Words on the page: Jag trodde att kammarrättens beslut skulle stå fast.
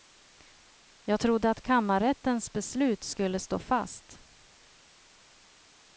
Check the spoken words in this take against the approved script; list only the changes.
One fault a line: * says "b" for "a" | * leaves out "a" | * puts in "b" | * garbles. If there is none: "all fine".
all fine